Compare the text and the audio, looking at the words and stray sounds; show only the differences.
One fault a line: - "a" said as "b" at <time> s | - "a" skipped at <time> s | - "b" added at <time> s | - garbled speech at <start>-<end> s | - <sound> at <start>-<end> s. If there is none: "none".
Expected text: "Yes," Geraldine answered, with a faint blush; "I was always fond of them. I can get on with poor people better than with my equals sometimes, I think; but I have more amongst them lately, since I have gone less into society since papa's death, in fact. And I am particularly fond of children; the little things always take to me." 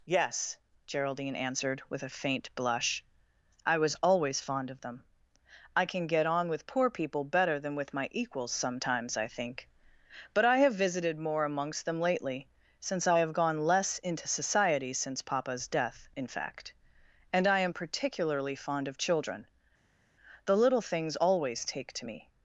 - "visited" added at 10.7 s